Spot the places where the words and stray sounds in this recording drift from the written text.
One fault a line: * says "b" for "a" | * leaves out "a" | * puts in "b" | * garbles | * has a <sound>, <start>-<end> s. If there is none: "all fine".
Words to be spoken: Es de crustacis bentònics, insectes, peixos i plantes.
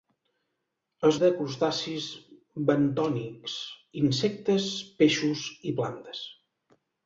all fine